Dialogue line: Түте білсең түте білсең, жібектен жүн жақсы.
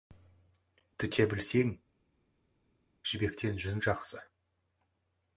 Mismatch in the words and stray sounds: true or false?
true